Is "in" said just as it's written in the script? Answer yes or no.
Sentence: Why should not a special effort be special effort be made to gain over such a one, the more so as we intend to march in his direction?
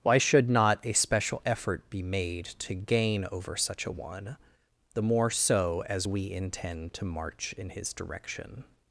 yes